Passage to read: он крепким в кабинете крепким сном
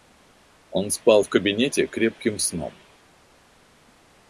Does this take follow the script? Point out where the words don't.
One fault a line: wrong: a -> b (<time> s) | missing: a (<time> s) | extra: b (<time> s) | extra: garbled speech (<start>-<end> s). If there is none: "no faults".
wrong: крепким -> спал (0.9 s)